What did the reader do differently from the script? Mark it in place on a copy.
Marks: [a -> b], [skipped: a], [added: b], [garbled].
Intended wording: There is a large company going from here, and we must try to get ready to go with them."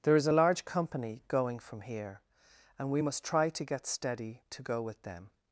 There is a large company going from here, and we must try to get [ready -> steady] to go with them."